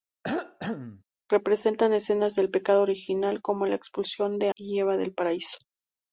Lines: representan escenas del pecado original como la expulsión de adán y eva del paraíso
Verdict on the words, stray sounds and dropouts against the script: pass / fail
fail